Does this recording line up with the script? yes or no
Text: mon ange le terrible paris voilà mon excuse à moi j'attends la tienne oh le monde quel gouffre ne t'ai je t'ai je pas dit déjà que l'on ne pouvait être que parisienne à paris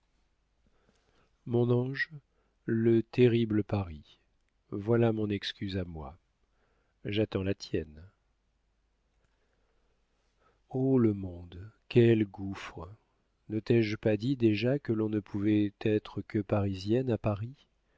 no